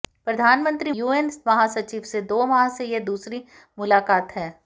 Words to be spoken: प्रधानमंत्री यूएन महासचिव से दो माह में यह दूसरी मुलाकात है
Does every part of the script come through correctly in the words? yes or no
yes